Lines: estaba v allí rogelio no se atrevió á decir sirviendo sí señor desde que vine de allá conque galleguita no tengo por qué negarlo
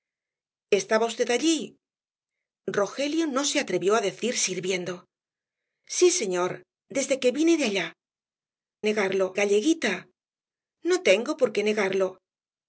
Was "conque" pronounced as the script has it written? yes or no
no